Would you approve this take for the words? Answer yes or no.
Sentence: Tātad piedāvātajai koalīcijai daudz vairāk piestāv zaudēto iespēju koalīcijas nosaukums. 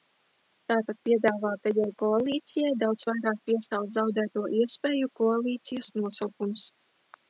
yes